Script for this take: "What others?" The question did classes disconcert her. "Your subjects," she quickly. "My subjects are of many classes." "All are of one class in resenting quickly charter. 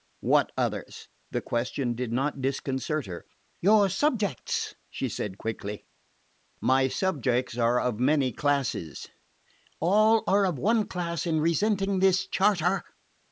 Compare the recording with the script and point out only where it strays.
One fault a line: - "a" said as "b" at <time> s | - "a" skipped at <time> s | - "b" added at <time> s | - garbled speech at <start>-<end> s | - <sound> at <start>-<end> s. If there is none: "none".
- "classes" said as "not" at 2.1 s
- "said" added at 5.1 s
- "quickly" said as "this" at 12.0 s